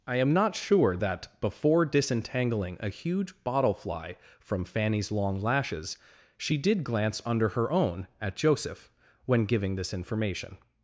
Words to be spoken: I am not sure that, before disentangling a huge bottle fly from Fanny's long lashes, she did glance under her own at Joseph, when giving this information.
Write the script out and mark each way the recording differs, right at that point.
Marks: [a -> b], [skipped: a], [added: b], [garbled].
I am not sure that, before disentangling a huge bottle fly from Fanny's long lashes, she did glance under her own at Joseph, when giving this information.